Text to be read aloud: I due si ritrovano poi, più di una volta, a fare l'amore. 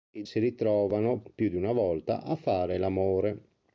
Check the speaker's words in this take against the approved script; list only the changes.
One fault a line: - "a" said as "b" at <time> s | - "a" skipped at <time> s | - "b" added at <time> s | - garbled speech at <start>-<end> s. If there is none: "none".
- "due" skipped at 0.2 s
- "poi" skipped at 1.2 s